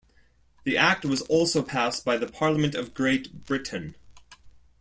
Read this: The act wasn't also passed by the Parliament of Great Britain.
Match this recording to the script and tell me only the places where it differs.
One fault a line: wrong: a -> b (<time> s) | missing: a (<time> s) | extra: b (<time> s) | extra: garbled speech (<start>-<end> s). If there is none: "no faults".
wrong: wasn't -> was (1.1 s)